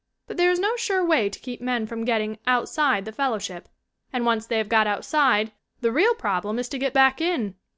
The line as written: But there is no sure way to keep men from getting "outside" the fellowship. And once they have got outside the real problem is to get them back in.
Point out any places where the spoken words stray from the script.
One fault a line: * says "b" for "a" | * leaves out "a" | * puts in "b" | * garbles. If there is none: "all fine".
* leaves out "them"